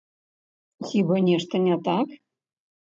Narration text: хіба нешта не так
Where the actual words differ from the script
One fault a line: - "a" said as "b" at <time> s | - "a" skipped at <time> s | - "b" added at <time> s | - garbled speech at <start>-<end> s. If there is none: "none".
none